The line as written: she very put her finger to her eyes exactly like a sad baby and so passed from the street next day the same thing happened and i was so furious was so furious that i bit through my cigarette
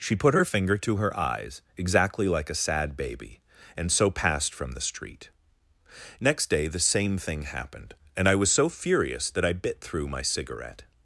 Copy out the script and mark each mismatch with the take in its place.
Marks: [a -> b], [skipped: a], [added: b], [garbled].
she [skipped: very] put her finger to her eyes exactly like a sad baby and so passed from the street next day the same thing happened and i was so furious [skipped: was so furious] that i bit through my cigarette